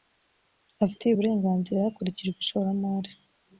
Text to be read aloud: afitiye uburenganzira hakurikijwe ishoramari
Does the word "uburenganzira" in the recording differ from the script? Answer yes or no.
no